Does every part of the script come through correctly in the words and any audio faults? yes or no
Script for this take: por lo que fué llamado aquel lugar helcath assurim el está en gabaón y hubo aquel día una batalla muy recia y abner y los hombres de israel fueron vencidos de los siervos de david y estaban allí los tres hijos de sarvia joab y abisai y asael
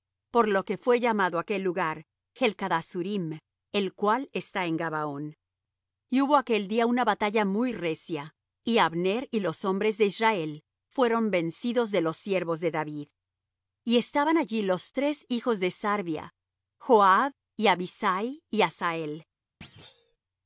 no